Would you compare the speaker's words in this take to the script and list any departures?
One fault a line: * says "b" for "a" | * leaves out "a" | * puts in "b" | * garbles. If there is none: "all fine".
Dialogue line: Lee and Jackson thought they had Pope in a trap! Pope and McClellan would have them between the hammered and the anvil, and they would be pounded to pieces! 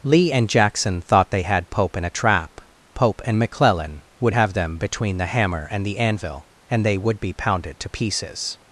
* says "hammer" for "hammered"